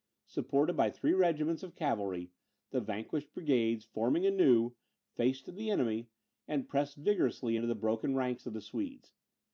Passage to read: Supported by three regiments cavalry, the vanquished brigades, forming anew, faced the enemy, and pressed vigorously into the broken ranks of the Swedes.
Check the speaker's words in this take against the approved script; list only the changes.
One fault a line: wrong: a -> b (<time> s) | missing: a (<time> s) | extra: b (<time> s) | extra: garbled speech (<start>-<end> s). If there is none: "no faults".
extra: of (1.6 s)